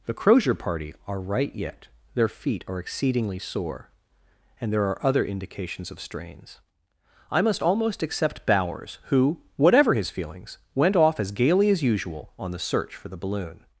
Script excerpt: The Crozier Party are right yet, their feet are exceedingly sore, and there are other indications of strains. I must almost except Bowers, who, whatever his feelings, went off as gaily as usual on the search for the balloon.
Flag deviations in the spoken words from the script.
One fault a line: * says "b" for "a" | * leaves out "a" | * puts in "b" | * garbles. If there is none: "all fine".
all fine